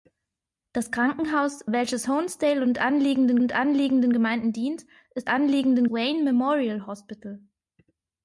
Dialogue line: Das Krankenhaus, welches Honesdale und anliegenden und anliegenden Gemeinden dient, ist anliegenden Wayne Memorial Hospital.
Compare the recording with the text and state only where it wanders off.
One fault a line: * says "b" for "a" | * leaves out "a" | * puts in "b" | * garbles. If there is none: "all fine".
all fine